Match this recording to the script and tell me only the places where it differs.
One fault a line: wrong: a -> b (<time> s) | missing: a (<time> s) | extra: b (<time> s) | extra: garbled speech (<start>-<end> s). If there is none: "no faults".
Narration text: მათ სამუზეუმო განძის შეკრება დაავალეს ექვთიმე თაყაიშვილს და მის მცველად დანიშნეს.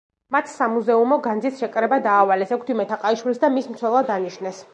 no faults